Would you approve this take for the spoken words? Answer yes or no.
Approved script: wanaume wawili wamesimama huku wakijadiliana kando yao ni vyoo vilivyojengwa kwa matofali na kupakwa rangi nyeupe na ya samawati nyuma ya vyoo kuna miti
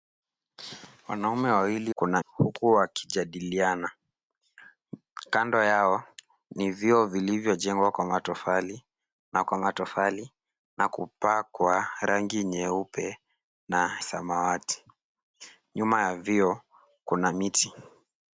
no